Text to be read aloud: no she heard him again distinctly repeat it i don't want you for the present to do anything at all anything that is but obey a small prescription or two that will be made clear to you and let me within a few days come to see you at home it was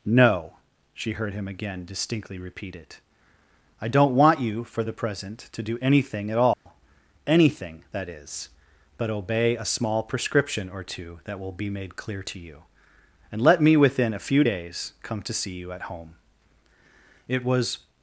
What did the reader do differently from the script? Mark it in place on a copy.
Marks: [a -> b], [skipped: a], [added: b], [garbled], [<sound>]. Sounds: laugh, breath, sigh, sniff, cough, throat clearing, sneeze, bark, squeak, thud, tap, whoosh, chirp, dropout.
no she heard him again distinctly repeat it i don't want you for the present to do anything at all [dropout] anything that is but obey a small prescription or two that will be made clear to you and let me within a few days come to see you at home it was